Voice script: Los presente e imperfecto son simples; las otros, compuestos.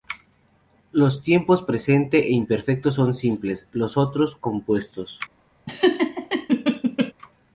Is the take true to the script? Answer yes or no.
no